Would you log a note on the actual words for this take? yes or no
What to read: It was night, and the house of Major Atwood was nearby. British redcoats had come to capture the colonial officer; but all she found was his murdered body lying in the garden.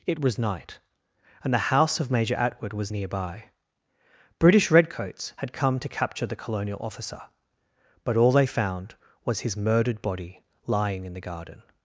yes